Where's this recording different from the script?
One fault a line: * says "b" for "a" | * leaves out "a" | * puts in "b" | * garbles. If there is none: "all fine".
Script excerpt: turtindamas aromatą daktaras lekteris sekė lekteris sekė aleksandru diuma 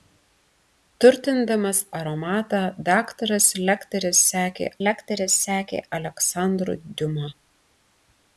all fine